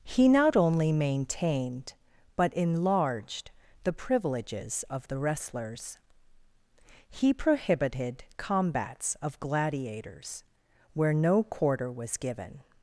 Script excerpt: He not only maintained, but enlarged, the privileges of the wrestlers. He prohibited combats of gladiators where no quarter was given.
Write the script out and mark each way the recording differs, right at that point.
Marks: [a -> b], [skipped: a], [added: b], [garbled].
He not only maintained, but enlarged, the privileges of the wrestlers. He prohibited combats of gladiators where no quarter was given.